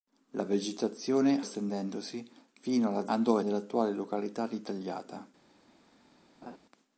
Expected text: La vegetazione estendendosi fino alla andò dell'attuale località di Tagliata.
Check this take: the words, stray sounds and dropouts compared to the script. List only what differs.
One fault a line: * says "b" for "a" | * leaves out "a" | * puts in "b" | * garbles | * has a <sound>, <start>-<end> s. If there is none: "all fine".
* has a laugh, 6.4-6.6 s